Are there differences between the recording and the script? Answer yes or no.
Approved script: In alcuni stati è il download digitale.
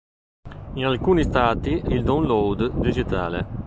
no